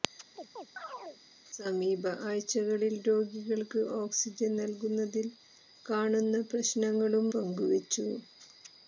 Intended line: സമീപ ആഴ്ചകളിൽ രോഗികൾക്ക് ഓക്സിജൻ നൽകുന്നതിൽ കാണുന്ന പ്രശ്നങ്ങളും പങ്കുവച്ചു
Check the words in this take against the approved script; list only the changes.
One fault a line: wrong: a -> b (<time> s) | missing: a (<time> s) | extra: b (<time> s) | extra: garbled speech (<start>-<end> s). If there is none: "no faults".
no faults